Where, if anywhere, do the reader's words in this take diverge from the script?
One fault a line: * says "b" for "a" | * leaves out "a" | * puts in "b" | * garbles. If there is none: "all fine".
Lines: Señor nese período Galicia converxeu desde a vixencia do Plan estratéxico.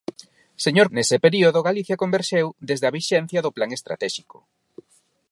all fine